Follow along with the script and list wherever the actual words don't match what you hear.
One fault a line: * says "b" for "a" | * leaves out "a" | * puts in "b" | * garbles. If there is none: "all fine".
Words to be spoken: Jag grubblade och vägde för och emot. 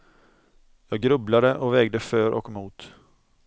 all fine